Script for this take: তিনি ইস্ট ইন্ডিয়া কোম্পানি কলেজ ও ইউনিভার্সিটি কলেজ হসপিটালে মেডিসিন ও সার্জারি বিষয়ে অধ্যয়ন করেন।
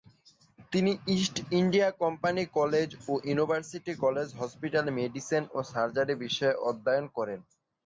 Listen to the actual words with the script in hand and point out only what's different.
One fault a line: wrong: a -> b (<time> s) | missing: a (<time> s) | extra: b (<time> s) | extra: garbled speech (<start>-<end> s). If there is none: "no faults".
no faults